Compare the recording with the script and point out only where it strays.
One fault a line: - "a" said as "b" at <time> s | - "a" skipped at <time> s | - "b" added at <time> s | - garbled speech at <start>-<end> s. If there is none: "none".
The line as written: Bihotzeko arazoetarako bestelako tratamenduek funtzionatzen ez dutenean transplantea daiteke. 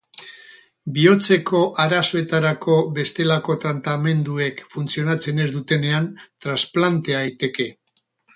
none